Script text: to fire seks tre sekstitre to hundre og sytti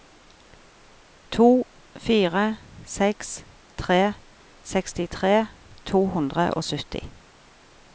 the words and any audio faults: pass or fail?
pass